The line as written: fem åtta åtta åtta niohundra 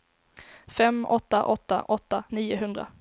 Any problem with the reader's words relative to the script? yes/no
no